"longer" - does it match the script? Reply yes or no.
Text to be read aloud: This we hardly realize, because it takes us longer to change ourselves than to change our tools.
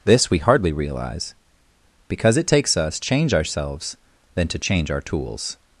no